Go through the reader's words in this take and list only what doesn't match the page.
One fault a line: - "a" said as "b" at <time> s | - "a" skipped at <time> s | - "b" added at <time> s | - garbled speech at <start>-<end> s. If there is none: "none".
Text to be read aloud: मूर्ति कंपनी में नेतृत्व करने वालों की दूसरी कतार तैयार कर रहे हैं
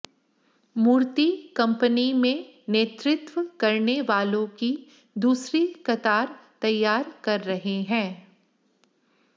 none